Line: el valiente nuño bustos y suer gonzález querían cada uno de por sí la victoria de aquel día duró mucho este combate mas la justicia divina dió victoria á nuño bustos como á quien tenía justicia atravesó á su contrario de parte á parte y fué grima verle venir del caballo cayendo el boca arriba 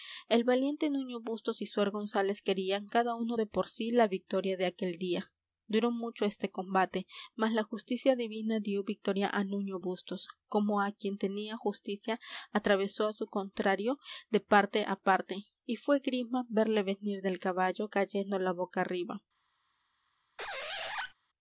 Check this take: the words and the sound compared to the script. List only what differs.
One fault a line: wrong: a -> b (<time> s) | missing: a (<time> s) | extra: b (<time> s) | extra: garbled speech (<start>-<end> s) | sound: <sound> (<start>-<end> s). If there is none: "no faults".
wrong: el -> la (18.4 s)
sound: squeak (20.4-21.1 s)